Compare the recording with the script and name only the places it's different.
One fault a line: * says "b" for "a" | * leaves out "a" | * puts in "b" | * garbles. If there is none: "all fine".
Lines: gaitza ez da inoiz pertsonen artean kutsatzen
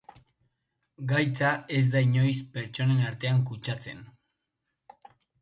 all fine